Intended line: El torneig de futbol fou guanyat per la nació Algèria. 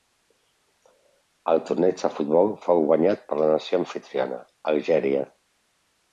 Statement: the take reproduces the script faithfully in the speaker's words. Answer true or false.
false